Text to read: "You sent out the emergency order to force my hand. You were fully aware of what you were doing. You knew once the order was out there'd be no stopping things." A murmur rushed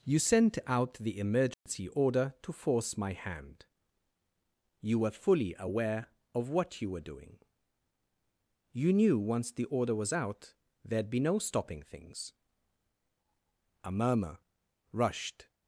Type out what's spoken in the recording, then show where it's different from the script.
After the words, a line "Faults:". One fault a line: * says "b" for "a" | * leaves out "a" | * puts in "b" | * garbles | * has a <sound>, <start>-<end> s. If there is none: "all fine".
"You sent out the emergency order to force my hand. You were fully aware of what you were doing. You knew once the order was out there'd be no stopping things." A murmur rushed
Faults:
* has a dropout, 1.5-1.7 s